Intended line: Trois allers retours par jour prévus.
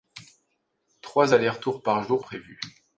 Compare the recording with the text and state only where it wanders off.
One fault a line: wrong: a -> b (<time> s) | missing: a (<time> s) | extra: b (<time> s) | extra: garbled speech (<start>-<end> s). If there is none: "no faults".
no faults